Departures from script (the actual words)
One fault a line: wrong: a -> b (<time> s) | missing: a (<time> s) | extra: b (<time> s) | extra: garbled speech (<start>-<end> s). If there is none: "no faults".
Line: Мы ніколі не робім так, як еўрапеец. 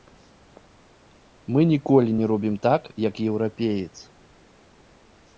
no faults